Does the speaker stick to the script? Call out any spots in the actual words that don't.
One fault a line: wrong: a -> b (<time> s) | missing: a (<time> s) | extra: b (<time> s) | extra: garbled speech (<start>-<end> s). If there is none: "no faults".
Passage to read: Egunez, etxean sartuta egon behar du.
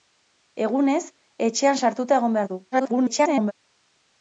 extra: garbled speech (2.7-3.5 s)